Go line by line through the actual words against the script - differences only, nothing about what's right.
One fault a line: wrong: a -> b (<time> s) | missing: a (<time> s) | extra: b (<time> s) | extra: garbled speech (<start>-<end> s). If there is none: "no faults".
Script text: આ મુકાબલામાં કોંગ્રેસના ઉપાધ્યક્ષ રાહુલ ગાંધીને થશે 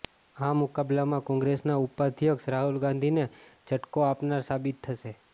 extra: ઝટકો આપનાર સાબિત (3.7 s)